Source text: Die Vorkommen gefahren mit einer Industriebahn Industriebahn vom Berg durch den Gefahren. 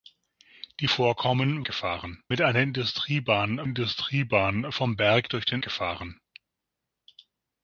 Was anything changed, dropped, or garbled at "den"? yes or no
no